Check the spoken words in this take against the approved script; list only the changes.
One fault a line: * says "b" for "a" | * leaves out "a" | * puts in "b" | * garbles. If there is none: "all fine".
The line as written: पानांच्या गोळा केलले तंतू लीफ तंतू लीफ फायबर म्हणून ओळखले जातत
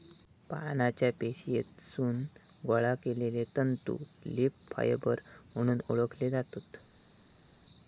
* puts in "पेशीतसून"
* leaves out "तंतू लीफ"